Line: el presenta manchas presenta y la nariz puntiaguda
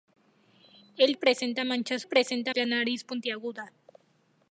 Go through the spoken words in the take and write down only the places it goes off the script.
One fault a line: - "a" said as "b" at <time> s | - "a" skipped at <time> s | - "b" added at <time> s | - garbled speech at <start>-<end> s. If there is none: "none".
none